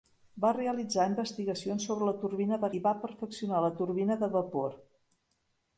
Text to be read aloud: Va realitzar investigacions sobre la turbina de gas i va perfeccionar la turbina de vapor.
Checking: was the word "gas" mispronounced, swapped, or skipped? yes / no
yes